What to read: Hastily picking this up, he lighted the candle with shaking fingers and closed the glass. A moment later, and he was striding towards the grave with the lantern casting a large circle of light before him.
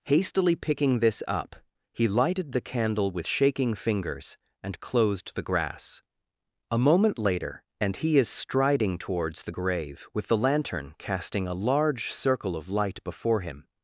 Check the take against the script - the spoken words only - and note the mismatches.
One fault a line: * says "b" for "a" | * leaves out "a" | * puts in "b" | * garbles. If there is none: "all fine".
* says "grass" for "glass"
* says "is" for "was"